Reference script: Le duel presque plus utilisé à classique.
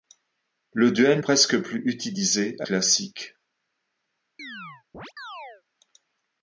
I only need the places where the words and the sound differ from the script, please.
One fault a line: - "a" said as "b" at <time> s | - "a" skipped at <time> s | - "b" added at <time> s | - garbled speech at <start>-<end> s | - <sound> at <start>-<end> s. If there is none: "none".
- chirp at 4.4-5.6 s